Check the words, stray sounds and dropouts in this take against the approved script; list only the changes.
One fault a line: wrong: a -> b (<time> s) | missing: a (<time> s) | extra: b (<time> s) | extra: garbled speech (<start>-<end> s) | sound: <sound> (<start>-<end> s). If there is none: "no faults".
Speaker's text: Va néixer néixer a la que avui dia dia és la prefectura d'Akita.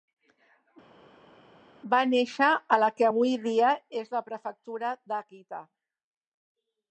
missing: néixer (2.5 s)
missing: dia (3.7 s)